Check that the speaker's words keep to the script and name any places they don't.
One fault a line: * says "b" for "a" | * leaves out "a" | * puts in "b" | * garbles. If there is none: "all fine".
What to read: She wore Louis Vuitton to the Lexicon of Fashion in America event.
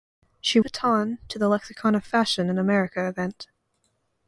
* leaves out "wore Louis"